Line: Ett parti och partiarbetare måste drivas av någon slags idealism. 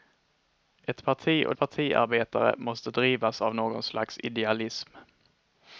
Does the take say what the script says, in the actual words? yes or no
yes